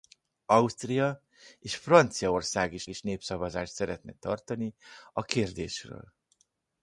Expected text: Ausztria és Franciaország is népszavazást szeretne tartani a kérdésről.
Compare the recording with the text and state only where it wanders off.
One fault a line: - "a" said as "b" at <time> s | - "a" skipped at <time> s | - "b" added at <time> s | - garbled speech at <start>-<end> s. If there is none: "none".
- "is" added at 2.9 s